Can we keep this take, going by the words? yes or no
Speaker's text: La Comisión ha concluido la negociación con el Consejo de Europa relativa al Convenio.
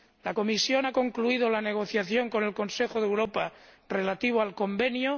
yes